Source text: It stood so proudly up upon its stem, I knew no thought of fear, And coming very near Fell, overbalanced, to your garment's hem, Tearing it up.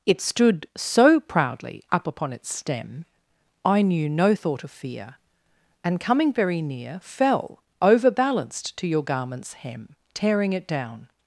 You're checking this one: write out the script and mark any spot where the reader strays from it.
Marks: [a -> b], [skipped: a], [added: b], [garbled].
It stood so proudly up upon its stem, I knew no thought of fear, And coming very near Fell, overbalanced, to your garment's hem, Tearing it [up. -> down]